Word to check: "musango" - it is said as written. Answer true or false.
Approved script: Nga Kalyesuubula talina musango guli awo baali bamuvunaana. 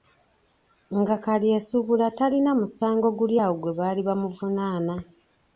true